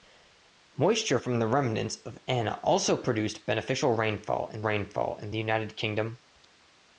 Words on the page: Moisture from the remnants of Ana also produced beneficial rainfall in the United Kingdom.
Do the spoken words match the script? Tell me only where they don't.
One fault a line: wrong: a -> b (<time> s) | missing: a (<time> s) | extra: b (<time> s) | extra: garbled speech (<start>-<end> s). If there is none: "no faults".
extra: rainfall in (4.6 s)